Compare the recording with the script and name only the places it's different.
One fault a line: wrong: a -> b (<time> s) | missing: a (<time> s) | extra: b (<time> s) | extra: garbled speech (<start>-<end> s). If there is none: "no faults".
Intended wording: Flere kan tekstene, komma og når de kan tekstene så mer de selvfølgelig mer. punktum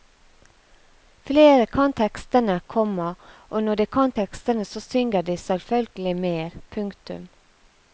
wrong: mer -> synger (4.8 s)